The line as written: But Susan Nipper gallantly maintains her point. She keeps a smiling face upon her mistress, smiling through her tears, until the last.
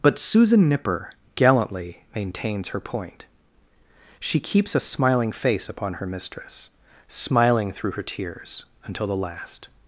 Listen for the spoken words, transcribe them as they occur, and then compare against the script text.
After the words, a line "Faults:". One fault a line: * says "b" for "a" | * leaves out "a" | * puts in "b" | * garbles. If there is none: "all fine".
But Susan Nipper gallantly maintains her point. She keeps a smiling face upon her mistress, smiling through her tears, until the last.
Faults:
all fine